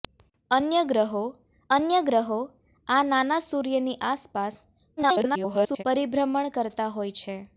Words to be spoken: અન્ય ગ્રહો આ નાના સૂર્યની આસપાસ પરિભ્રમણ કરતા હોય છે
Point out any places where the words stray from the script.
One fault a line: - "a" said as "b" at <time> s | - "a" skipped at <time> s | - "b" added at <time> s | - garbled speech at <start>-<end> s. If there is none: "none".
- "અન્ય ગ્રહો" added at 1.7 s
- garbled speech at 5.0-5.8 s